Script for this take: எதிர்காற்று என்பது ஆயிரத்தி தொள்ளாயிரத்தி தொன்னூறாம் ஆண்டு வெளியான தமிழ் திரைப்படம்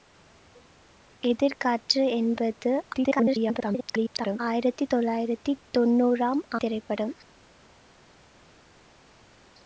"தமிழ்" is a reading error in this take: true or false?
true